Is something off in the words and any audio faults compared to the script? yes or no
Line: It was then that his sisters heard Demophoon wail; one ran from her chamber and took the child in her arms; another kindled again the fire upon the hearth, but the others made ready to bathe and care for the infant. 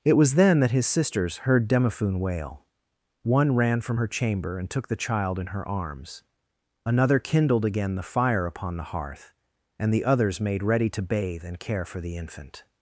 yes